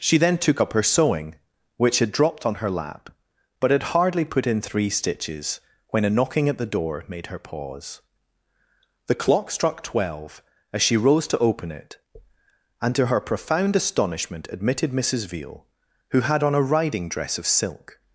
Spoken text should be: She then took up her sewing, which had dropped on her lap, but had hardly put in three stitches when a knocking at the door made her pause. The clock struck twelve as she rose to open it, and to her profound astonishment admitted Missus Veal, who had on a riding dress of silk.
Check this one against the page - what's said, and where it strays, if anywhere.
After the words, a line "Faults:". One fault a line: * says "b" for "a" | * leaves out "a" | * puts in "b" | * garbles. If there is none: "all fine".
She then took up her sewing, which had dropped on her lap, but had hardly put in three stitches when a knocking at the door made her pause. The clock struck twelve as she rose to open it, and to her profound astonishment admitted Missus Veal, who had on a riding dress of silk.
Faults:
all fine